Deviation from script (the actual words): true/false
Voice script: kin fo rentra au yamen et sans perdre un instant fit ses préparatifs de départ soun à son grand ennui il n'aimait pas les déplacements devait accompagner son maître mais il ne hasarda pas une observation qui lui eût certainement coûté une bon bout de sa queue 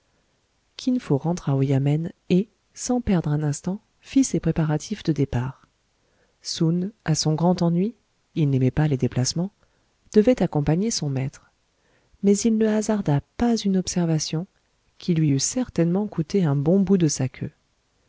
true